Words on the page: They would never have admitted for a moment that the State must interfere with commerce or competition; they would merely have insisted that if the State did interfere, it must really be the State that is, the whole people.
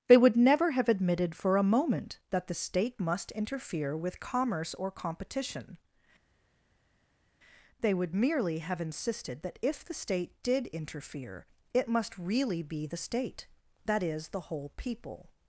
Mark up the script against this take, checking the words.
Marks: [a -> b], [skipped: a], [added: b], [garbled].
They would never have admitted for a moment that the State must interfere with commerce or competition; they would merely have insisted that if the State did interfere, it must really be the State that is, the whole people.